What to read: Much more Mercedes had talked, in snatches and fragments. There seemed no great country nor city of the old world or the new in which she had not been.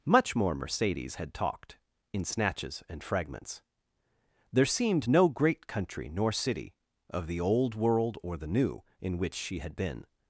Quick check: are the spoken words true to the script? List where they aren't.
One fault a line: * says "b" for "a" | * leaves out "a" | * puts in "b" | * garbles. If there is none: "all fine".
* leaves out "not"